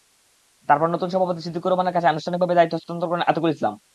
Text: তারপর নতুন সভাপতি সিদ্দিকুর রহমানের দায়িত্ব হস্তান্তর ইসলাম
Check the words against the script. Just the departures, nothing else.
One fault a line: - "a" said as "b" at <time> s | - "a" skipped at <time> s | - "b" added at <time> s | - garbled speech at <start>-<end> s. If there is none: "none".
- "কাছে আনুষ্ঠানিকভাবে" added at 1.9 s
- "করেন আতিকুল" added at 3.1 s